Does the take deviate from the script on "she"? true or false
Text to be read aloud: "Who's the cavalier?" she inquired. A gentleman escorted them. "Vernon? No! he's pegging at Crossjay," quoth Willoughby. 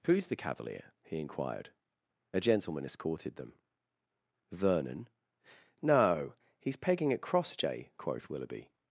true